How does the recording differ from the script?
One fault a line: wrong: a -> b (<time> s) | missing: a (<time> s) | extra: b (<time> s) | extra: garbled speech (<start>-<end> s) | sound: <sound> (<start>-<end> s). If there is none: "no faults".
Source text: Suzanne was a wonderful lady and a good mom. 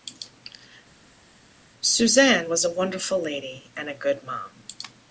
no faults